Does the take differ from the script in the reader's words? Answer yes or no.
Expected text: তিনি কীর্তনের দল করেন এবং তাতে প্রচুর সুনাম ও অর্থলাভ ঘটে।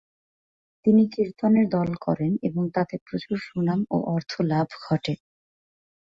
no